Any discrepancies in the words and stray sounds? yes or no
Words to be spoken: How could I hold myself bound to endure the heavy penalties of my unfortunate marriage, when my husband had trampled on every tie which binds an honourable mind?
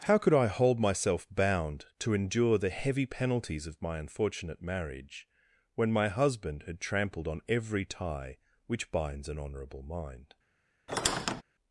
yes